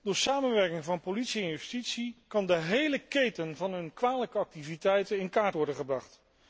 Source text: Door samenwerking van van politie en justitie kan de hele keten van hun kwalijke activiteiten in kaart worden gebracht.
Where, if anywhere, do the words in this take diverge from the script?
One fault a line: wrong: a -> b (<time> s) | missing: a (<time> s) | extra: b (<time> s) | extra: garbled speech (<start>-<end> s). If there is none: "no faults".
missing: van (1.0 s)